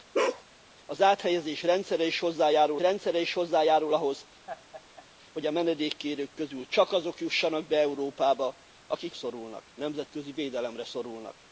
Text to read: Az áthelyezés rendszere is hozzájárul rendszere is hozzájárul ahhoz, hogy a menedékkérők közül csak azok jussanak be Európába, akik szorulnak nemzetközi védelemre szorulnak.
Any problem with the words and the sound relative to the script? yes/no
yes